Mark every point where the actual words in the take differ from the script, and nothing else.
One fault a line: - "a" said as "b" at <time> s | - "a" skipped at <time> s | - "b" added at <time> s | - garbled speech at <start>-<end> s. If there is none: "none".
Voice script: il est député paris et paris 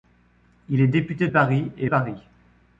none